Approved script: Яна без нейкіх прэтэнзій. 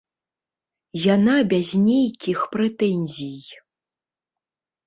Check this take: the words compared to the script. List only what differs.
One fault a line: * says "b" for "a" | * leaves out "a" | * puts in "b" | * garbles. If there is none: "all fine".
all fine